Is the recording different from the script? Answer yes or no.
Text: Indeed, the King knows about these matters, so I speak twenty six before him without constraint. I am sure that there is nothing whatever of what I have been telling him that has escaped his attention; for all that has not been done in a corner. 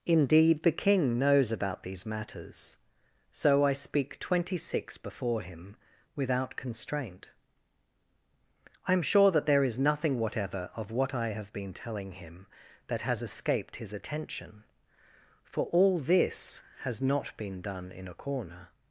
yes